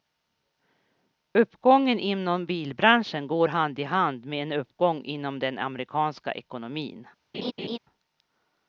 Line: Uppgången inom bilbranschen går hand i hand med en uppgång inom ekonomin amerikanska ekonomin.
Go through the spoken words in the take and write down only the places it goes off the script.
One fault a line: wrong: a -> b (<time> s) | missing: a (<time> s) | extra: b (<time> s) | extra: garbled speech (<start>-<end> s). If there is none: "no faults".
wrong: ekonomin -> den (5.4 s)